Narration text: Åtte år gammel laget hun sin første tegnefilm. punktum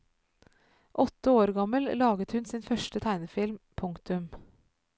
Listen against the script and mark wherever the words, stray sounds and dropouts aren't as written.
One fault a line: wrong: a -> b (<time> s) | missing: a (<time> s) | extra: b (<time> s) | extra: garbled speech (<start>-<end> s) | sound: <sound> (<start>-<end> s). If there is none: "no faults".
no faults